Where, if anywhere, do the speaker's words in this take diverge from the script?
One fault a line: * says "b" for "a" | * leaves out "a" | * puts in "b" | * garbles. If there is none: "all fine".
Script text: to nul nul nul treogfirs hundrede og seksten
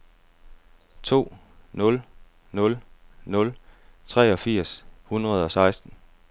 all fine